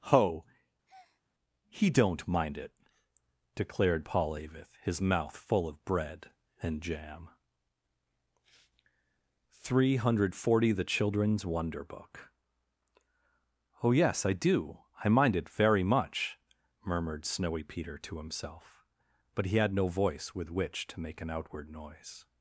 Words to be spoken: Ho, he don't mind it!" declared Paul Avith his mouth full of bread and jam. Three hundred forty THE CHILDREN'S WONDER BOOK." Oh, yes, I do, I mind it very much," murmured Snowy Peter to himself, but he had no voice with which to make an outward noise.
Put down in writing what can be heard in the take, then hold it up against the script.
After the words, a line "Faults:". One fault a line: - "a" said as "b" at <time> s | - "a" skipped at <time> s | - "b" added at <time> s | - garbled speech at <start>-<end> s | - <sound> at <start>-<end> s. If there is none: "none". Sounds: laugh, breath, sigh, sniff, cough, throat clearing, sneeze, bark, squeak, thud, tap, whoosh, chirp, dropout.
Ho, he don't mind it!" declared Paul Avith his mouth full of bread and jam. Three hundred forty THE CHILDREN'S WONDER BOOK." Oh, yes, I do, I mind it very much," murmured Snowy Peter to himself, but he had no voice with which to make an outward noise.
Faults:
- breath at 0.9-1.2 s